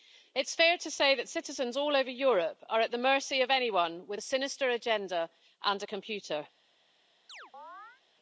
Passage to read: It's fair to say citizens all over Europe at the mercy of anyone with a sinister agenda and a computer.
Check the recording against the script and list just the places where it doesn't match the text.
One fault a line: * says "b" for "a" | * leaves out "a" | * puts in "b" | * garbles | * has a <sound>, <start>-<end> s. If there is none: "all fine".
* puts in "that"
* puts in "are"
* has a chirp, 7.3-8.0 s